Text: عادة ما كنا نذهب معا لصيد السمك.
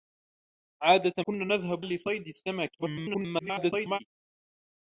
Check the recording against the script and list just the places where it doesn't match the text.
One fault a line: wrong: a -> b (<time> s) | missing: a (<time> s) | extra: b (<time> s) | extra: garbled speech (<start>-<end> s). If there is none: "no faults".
missing: ما (1.2 s)
missing: معا (1.8 s)
extra: garbled speech (2.8-4.0 s)